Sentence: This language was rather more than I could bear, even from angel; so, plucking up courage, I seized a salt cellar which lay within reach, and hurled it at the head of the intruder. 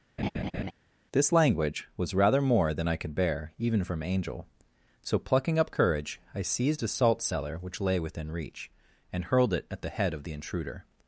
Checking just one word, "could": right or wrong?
right